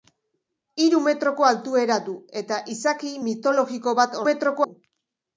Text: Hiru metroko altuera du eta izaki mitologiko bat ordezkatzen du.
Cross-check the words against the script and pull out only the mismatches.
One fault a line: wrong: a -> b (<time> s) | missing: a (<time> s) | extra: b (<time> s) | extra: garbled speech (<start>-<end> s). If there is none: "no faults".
wrong: ordezkatzen -> metroko (4.3 s)